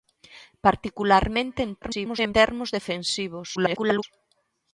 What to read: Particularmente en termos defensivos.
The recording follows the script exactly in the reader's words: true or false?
false